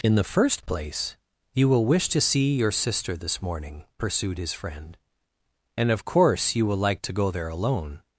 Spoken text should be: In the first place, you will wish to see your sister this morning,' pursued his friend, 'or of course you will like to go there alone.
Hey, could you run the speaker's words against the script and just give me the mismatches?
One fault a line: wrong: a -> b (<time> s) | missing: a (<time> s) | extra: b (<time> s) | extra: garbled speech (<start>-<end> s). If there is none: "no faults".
wrong: or -> and (5.8 s)